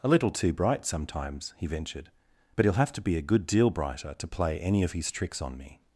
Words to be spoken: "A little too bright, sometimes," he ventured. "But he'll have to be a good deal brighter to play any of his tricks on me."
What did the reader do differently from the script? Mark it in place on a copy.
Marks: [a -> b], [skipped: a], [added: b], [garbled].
"A little too bright, sometimes," he ventured. "But he'll have to be a good deal brighter to play any of his tricks on me."